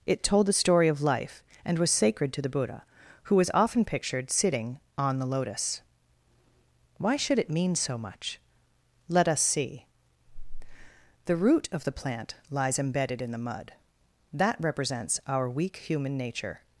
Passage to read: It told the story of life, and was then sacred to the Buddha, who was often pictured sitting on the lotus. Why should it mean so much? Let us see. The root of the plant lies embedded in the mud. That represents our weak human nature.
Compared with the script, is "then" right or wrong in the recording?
wrong